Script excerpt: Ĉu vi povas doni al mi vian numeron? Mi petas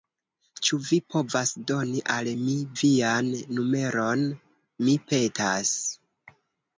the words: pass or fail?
pass